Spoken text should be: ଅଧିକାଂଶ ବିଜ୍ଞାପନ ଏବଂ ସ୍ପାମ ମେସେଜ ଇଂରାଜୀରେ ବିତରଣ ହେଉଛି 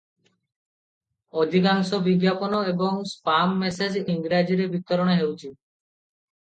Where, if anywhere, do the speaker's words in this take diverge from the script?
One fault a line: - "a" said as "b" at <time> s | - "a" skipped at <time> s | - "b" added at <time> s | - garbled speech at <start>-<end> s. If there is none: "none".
none